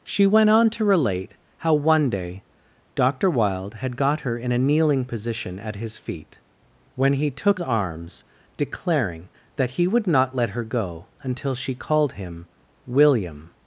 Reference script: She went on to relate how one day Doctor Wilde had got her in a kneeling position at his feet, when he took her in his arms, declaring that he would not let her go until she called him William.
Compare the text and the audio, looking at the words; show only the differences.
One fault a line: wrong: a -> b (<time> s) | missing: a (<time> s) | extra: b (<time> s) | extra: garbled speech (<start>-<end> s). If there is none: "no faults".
missing: her in his (7.6 s)